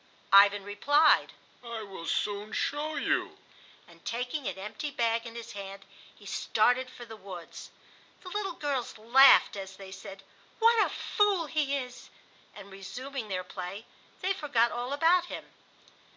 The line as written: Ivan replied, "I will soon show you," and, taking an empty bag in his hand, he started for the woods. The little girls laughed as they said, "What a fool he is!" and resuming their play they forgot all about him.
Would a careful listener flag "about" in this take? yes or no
no